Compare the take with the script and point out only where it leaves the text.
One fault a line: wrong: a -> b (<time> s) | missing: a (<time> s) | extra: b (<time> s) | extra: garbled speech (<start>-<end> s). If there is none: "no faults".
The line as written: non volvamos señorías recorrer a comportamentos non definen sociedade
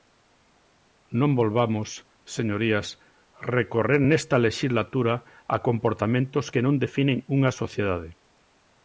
extra: nesta lexislatura (4.1 s)
extra: que (6.5 s)
extra: unha (7.3 s)